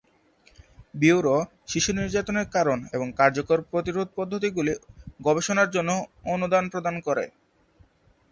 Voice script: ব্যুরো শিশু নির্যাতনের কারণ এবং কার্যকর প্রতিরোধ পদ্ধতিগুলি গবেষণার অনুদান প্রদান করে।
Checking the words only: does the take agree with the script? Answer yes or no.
no